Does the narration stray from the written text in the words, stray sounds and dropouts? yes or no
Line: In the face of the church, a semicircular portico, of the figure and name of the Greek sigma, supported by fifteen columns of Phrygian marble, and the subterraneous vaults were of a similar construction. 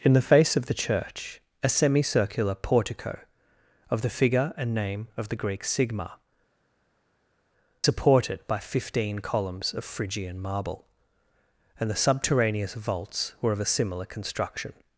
no